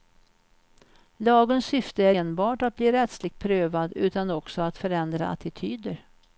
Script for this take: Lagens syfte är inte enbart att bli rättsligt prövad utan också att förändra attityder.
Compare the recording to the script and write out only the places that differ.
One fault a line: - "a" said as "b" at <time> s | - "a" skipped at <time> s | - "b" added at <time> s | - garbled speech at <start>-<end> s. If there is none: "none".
- "inte" skipped at 2.2 s